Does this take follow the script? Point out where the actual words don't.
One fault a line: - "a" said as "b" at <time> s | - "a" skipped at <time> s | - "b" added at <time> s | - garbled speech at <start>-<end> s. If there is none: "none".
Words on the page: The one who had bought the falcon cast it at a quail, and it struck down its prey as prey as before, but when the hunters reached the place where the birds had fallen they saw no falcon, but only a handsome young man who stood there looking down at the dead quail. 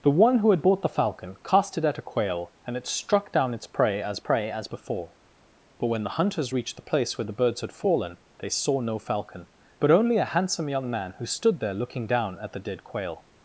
none